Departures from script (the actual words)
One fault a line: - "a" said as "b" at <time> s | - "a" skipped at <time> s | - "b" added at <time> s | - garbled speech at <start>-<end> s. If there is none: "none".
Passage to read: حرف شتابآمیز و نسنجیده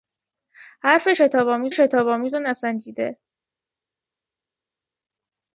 - "شتابآمیز" added at 1.7 s